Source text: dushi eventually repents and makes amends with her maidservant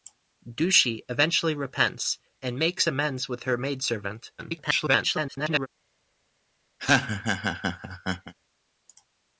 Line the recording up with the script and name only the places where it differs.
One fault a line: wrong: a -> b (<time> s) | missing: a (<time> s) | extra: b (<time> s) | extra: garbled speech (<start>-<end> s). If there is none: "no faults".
extra: garbled speech (4.4-5.7 s)